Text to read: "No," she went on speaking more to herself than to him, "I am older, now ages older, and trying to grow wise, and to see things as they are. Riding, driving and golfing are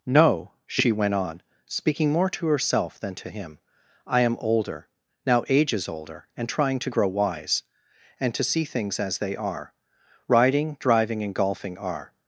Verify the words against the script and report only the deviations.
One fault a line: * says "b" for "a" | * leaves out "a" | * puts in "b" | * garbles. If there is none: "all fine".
all fine